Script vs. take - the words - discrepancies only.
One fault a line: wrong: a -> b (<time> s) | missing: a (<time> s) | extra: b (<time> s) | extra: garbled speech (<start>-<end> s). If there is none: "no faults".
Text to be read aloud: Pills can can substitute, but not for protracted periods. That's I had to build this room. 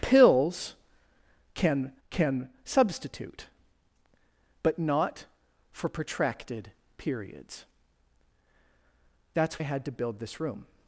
no faults